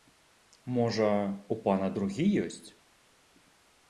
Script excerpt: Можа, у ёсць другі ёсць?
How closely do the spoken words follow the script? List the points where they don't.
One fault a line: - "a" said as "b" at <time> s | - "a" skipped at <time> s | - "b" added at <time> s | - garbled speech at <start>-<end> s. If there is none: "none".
- "ёсць" said as "пана" at 1.6 s